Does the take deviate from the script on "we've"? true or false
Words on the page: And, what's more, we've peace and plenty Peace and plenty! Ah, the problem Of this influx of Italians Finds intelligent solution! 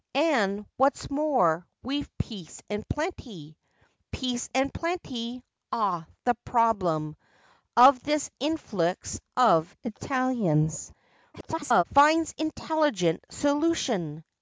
false